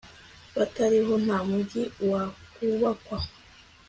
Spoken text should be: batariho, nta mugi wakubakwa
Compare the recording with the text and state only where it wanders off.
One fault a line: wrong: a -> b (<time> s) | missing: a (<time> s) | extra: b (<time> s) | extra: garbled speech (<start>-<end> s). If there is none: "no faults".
no faults